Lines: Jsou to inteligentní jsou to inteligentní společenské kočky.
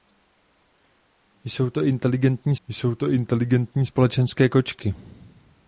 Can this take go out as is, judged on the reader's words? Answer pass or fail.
pass